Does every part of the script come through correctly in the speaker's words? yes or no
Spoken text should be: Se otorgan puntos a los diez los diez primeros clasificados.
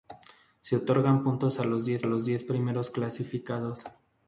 yes